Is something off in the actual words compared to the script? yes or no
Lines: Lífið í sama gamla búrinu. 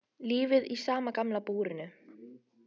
no